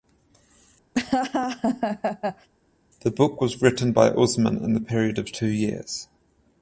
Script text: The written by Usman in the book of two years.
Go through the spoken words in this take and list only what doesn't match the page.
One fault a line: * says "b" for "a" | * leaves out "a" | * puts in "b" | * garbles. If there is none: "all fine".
* puts in "book was"
* says "period" for "book"